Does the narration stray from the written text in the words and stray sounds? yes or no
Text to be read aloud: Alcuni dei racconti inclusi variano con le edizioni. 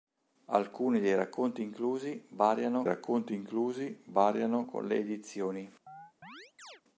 yes